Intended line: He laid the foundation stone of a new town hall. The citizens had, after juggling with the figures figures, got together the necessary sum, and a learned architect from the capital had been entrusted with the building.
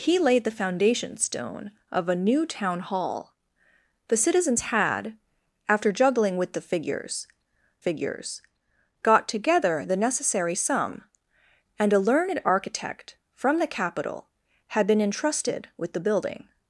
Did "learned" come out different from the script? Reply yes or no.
no